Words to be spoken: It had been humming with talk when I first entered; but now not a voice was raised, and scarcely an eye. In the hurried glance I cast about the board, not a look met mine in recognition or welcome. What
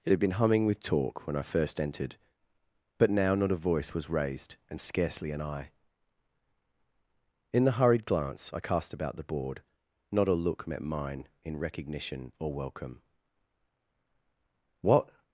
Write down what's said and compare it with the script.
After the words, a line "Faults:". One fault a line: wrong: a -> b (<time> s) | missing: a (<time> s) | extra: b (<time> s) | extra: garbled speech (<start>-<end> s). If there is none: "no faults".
It had been humming with talk when I first entered; but now not a voice was raised, and scarcely an eye. In the hurried glance I cast about the board, not a look met mine in recognition or welcome. What
Faults:
no faults